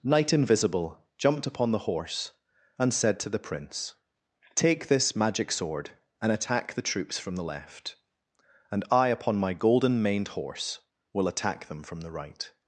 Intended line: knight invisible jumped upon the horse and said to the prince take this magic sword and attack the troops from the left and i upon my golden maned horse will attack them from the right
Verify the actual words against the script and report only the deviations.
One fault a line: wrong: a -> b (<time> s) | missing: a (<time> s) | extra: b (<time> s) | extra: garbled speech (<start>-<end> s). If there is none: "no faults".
no faults